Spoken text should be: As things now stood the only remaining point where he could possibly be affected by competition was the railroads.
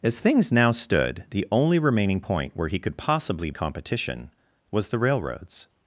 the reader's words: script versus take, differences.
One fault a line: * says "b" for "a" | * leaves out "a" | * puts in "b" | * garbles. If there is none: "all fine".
* leaves out "be affected by"